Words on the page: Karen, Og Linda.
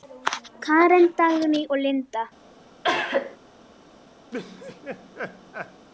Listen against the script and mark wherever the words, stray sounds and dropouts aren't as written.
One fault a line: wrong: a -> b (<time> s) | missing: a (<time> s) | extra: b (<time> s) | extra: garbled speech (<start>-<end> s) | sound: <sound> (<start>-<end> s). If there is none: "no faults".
extra: Dagný (1.2 s)
sound: cough (2.8-3.4 s)
sound: laugh (4.3-5.9 s)